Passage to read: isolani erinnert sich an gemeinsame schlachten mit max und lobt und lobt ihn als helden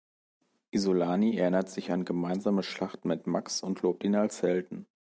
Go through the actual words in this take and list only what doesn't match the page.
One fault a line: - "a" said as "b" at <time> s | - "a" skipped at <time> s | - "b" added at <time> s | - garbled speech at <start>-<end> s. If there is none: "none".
- "und lobt" skipped at 4.0 s